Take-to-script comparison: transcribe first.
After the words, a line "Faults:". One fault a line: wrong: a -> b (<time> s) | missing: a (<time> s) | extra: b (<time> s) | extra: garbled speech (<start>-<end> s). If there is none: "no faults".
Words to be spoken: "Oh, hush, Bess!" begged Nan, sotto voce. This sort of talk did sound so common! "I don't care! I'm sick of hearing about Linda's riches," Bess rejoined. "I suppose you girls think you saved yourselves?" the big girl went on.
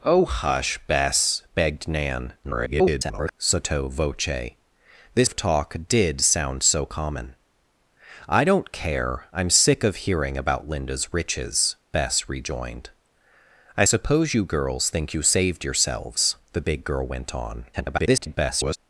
"Oh, hush, Bess!" begged Nan, [garbled] sotto voce. This of talk did sound so common! "I don't care! I'm sick of hearing about Linda's riches," Bess rejoined. "I suppose you girls think you saved yourselves?" the big girl went on. [garbled]
Faults:
extra: garbled speech (2.4-3.3 s)
missing: sort (5.3 s)
extra: garbled speech (17.7-18.8 s)